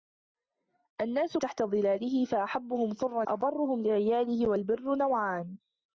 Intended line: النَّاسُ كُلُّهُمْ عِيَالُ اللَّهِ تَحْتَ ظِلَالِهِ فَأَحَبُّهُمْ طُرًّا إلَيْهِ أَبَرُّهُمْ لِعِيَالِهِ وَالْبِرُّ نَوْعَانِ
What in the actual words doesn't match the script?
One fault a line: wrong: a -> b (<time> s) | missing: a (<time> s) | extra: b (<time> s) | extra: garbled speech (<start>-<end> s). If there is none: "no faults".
missing: كُلُّهُمْ عِيَالُ اللَّهِ (1.4 s)
missing: إلَيْهِ (3.2 s)